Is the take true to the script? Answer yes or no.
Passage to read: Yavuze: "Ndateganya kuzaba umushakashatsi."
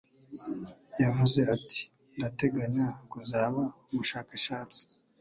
no